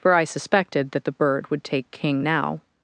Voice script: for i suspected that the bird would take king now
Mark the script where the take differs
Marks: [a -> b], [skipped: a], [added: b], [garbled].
for i suspected that the bird would take king now